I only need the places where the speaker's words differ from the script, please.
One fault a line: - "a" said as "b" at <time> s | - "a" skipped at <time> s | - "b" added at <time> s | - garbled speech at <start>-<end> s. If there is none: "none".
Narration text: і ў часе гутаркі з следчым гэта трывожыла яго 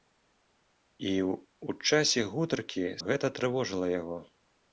- "следчым" skipped at 3.0 s